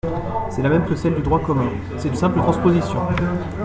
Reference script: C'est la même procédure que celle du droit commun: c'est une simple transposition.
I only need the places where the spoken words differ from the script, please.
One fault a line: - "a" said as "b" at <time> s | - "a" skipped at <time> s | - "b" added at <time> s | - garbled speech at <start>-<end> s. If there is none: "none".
- "procédure" skipped at 0.8 s
- "une" skipped at 2.2 s